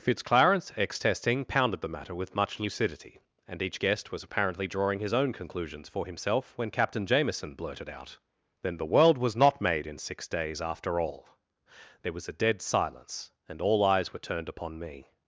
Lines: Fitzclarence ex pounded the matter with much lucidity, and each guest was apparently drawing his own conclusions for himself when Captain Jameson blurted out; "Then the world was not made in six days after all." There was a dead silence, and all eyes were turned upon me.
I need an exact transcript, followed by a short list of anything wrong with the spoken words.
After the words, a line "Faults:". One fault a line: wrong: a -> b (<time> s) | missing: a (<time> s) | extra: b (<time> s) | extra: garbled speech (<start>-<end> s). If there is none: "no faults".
Fitzclarence ex testing pounded the matter with much lucidity, and each guest was apparently drawing his own conclusions for himself when Captain Jameson blurted out; "Then the world was not made in six days after all." There was a dead silence, and all eyes were turned upon me.
Faults:
extra: testing (1.0 s)